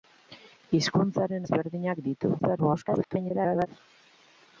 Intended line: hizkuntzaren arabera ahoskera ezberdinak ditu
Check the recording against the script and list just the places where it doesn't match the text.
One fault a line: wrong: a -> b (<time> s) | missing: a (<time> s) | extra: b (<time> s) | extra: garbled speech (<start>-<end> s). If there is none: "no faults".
missing: arabera ahoskera (1.5 s)
extra: garbled speech (2.4-3.7 s)